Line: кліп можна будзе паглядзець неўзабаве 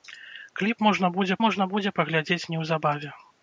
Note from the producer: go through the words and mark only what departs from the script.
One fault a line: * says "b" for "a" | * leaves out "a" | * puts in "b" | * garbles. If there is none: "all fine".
* puts in "можна будзе"